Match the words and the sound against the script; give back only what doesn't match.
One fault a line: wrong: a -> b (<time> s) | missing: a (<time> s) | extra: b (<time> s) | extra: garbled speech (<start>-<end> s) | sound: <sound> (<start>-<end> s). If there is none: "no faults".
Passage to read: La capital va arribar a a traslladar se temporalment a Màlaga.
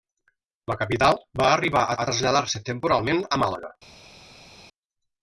no faults